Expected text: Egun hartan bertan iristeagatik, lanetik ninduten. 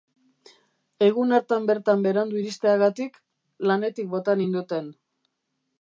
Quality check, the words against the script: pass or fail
fail